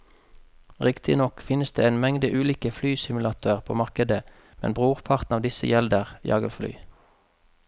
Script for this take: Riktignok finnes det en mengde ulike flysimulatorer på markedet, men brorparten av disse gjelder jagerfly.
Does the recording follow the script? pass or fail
pass